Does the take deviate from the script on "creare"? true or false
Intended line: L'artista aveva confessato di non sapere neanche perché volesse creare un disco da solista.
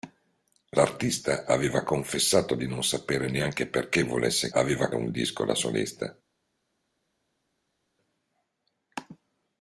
true